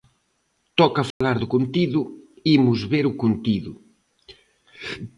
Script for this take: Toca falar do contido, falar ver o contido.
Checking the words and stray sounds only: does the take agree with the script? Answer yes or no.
no